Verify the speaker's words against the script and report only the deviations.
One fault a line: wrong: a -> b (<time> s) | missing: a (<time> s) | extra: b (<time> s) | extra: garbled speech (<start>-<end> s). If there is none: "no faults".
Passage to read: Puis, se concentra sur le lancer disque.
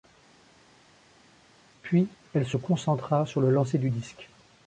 extra: elle (2.3 s)
extra: du (3.8 s)